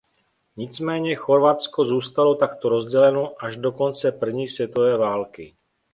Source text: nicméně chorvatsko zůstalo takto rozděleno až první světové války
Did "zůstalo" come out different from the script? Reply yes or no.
no